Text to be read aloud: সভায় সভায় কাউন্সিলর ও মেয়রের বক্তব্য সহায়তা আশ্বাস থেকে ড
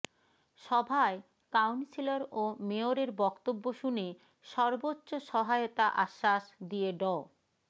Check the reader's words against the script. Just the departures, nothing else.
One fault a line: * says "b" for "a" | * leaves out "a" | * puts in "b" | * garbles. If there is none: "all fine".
* leaves out "সভায়"
* puts in "শুনে সর্বোচ্চ"
* says "দিয়ে" for "থেকে"